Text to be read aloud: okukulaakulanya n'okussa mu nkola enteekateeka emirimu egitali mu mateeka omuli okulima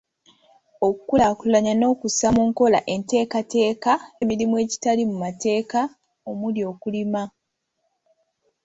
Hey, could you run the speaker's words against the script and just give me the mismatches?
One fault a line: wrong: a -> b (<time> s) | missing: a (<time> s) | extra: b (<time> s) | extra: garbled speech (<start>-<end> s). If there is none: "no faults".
no faults